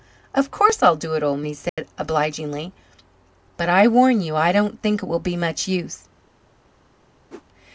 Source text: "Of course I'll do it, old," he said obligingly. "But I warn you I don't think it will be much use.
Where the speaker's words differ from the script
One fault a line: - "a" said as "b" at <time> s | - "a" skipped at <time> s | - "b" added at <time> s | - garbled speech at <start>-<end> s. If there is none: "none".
none